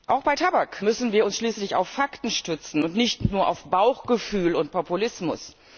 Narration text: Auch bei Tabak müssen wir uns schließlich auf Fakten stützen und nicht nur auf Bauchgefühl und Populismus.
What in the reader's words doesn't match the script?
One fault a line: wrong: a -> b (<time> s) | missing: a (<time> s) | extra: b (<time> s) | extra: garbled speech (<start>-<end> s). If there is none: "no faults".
no faults